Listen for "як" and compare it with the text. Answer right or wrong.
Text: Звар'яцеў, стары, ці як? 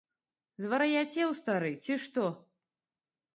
wrong